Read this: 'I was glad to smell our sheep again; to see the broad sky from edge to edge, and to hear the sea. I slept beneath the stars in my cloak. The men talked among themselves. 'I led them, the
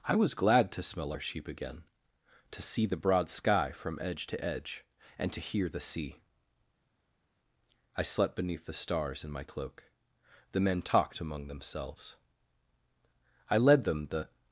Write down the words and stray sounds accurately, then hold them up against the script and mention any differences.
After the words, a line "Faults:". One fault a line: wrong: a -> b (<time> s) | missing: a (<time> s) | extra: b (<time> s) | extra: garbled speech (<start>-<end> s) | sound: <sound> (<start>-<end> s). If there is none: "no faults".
'I was glad to smell our sheep again; to see the broad sky from edge to edge, and to hear the sea. I slept beneath the stars in my cloak. The men talked among themselves. 'I led them, the
Faults:
no faults